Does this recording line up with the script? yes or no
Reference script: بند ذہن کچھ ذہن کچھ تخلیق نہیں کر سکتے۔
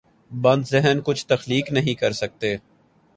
no